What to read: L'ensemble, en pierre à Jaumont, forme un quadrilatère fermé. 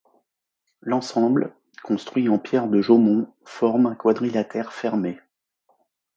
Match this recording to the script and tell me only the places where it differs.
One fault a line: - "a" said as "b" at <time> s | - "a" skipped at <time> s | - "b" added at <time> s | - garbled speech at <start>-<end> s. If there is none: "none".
- "construit" added at 1.8 s
- "à" said as "de" at 2.7 s